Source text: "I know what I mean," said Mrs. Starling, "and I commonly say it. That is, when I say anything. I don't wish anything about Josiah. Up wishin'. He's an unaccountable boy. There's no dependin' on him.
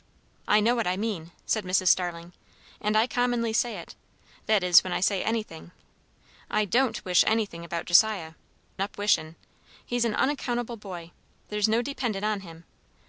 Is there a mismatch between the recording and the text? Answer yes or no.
no